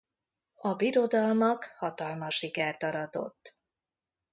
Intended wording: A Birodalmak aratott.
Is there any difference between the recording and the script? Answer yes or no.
yes